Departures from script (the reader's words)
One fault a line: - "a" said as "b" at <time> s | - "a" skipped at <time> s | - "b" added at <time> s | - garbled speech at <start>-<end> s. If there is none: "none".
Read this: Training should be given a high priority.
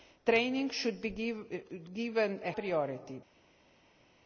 - "high" skipped at 2.5 s